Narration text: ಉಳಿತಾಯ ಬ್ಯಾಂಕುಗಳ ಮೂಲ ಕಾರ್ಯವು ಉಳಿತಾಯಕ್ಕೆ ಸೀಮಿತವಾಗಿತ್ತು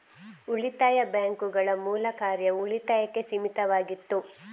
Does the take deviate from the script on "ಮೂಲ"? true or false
false